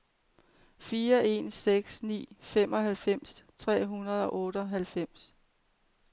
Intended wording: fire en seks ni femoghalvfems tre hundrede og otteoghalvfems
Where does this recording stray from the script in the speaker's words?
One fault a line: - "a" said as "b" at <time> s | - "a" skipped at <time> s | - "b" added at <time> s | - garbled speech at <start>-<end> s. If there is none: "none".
none